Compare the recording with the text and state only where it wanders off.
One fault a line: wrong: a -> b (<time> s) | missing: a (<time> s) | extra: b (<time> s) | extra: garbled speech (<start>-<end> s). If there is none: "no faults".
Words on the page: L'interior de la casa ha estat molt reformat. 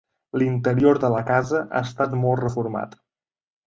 no faults